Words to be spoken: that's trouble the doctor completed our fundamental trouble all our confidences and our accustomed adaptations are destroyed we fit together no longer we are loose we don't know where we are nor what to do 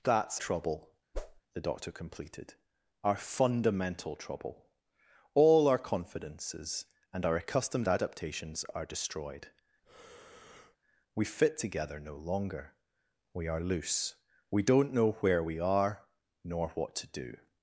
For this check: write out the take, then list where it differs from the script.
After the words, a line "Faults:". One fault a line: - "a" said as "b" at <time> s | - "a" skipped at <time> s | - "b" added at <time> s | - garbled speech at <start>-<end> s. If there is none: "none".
that's trouble the doctor completed our fundamental trouble all our confidences and our accustomed adaptations are destroyed we fit together no longer we are loose we don't know where we are nor what to do
Faults:
none